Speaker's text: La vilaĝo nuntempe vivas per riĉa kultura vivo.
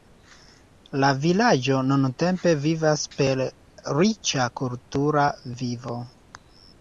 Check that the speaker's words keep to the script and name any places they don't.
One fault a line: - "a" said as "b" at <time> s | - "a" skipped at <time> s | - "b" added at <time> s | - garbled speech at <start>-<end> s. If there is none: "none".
none